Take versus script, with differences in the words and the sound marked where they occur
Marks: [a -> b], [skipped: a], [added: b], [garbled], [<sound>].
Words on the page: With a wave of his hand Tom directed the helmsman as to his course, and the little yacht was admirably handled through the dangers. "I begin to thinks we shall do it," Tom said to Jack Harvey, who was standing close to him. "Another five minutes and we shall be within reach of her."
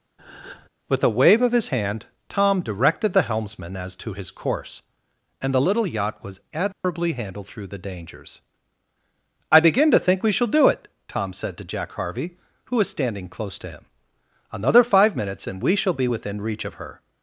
[breath] With a wave of his hand Tom directed the helmsman as to his course, and the little yacht was admirably [dropout] handled through the dangers. "I begin to [thinks -> think] we shall do it," Tom said to Jack Harvey, who was standing close to him. "Another five minutes and we shall be within reach of her."